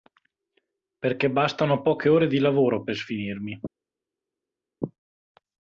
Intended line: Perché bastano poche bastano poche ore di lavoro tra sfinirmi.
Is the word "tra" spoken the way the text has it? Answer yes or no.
no